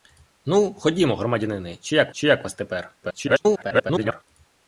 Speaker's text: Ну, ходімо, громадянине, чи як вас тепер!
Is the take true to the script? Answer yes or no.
no